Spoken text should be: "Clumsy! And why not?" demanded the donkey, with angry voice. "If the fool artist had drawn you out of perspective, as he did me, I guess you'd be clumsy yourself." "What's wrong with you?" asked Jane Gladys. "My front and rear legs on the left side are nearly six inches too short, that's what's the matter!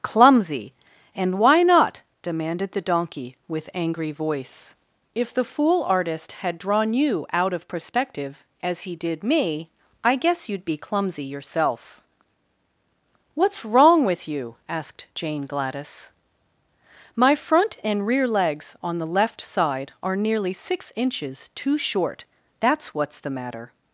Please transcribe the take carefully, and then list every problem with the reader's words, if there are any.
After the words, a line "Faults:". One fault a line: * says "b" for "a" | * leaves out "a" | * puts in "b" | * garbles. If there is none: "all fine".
"Clumsy! And why not?" demanded the donkey, with angry voice. "If the fool artist had drawn you out of perspective, as he did me, I guess you'd be clumsy yourself." "What's wrong with you?" asked Jane Gladys. "My front and rear legs on the left side are nearly six inches too short, that's what's the matter!
Faults:
all fine